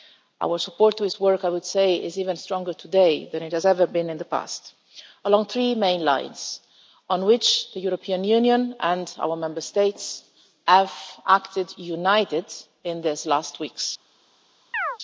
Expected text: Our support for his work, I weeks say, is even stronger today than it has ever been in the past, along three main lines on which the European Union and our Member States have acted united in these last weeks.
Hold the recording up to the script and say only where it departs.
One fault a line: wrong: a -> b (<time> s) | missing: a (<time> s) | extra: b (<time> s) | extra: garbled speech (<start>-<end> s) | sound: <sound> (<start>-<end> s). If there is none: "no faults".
wrong: weeks -> would (1.5 s)
sound: chirp (14.7-15.0 s)